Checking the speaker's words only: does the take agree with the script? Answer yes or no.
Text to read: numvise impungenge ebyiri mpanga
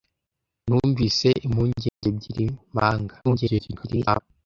no